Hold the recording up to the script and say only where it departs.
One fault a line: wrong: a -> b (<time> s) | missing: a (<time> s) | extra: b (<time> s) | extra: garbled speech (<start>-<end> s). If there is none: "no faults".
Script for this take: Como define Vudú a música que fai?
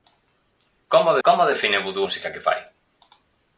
extra: como (1.3 s)
missing: a (2.0 s)